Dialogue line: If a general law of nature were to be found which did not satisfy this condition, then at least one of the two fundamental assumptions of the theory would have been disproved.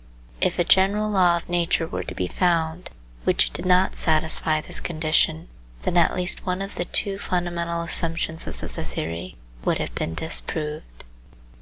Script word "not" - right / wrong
right